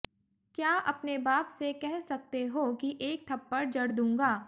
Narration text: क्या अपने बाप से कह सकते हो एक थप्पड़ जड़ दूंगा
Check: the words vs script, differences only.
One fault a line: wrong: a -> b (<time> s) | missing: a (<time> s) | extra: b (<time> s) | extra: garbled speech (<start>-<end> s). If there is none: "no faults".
extra: कि (2.8 s)